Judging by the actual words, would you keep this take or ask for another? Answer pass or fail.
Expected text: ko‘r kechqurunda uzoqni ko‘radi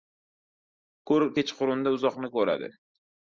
pass